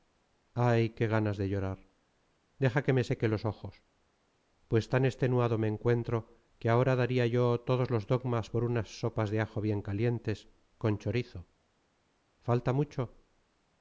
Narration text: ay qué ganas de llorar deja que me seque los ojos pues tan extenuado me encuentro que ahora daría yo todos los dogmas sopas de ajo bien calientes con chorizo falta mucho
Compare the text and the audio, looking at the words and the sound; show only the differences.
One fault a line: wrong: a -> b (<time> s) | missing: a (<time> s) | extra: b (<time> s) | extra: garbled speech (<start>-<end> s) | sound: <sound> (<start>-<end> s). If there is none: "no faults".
extra: por unas (8.5 s)